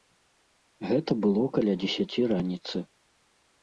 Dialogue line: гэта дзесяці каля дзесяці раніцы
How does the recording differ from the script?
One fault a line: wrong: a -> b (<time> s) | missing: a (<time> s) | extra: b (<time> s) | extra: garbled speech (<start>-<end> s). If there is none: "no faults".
wrong: дзесяці -> было (1.3 s)